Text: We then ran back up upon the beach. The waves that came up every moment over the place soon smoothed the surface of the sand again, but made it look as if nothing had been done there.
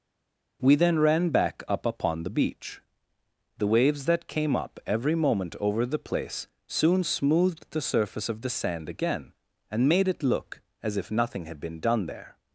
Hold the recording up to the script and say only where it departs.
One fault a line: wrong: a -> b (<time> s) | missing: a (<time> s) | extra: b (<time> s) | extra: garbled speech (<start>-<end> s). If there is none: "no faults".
wrong: but -> and (9.7 s)